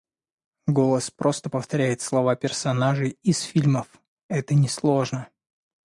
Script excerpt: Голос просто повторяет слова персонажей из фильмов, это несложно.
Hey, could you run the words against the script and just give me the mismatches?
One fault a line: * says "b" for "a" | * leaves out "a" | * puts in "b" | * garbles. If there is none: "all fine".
all fine